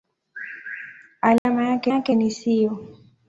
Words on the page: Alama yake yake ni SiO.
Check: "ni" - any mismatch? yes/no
no